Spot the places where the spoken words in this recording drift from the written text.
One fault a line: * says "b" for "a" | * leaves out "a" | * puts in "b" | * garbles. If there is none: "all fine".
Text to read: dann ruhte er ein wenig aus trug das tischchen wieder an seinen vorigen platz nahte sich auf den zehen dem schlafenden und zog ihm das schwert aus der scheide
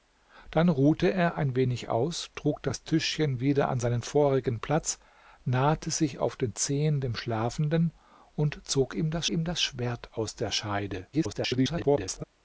* puts in "ihm das"
* garbles